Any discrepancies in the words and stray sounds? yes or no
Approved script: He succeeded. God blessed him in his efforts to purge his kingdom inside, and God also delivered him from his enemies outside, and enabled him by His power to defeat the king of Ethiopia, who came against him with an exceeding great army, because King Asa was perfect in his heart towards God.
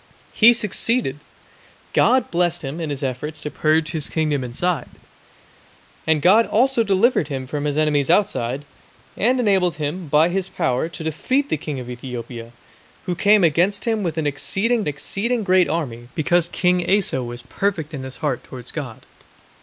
yes